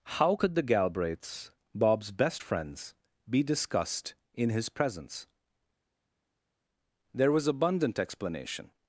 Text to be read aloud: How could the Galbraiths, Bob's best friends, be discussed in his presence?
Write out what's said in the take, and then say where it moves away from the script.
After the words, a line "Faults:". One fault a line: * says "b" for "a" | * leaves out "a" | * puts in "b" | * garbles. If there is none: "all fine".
How could the Galbraiths, Bob's best friends, be discussed in his presence? There was abundant explanation
Faults:
* puts in "There was abundant explanation"